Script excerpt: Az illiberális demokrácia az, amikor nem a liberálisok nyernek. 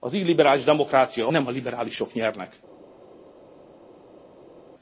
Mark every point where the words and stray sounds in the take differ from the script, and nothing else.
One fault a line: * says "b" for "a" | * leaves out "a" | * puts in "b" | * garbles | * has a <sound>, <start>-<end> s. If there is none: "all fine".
* leaves out "az amikor"